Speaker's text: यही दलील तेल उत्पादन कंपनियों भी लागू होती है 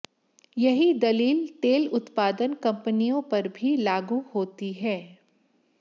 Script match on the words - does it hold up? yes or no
no